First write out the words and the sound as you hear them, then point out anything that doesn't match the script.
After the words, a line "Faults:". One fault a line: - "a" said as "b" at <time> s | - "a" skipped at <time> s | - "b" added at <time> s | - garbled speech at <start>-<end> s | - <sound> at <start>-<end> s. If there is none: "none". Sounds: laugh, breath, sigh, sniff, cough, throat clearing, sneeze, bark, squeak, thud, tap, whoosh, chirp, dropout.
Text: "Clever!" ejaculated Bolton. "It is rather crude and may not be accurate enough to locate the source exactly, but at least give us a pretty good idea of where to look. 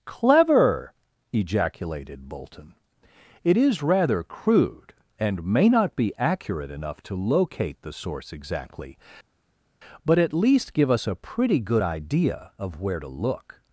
"Clever!" ejaculated Bolton. "It is rather crude and may not be accurate enough to locate the source exactly, but at least give us a pretty good idea of where to look.
Faults:
none